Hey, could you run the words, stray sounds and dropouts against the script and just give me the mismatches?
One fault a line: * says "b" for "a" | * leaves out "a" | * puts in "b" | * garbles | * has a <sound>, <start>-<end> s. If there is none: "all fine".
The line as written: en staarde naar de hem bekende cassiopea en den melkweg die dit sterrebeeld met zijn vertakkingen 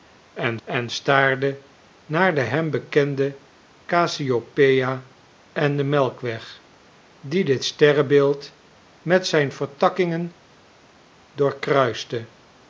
* puts in "en"